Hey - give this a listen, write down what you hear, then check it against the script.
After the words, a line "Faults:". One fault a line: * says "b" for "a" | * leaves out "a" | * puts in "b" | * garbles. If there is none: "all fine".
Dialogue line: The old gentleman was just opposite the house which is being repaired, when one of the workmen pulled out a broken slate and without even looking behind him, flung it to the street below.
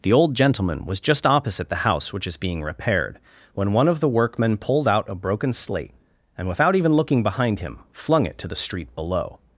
The old gentleman was just opposite the house which is being repaired, when one of the workmen pulled out a broken slate and without even looking behind him, flung it to the street below.
Faults:
all fine